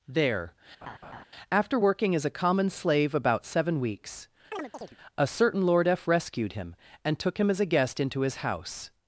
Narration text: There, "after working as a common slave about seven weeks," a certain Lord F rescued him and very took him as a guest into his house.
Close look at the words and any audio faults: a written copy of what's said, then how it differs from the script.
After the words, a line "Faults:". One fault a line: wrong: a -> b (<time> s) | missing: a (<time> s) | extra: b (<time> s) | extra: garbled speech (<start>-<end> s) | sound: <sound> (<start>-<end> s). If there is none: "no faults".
There, "after working as a common slave about seven weeks," a certain Lord F rescued him and took him as a guest into his house.
Faults:
sound: laugh (0.8-1.2 s)
sound: chirp (4.5-5.0 s)
missing: very (7.2 s)